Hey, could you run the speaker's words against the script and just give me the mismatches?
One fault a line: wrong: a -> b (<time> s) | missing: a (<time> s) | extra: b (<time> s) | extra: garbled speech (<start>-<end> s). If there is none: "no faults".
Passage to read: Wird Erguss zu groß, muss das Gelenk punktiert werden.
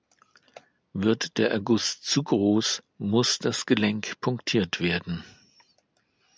extra: der (1.4 s)